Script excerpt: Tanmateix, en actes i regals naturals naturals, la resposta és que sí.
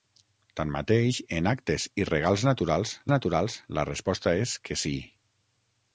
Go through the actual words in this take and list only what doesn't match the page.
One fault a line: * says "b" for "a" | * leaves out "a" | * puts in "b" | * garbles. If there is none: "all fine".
all fine